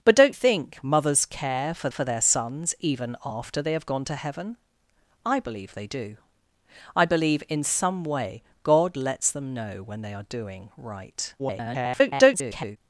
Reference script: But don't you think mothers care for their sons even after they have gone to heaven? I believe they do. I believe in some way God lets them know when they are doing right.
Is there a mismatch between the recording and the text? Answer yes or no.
yes